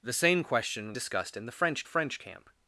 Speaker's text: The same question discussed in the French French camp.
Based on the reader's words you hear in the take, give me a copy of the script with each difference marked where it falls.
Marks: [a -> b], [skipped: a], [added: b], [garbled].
The same question discussed in the French French camp.